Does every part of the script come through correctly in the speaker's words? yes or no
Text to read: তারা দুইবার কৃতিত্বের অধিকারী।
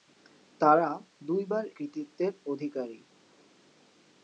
yes